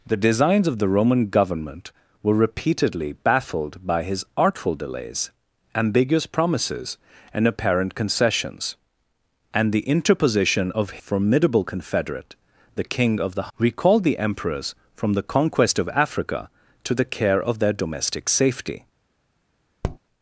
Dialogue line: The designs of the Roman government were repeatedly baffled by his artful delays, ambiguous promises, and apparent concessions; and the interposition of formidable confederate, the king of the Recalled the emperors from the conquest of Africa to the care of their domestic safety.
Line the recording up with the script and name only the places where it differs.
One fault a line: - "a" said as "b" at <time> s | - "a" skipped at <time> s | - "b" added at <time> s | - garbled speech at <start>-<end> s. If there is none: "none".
none